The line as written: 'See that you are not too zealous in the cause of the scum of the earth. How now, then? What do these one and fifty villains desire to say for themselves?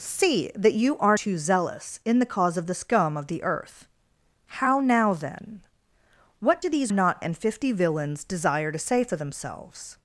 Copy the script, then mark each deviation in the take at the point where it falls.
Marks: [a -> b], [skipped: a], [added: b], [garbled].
'See that you are [skipped: not] too zealous in the cause of the scum of the earth. How now, then? What do these [one -> not] and fifty villains desire to say for themselves?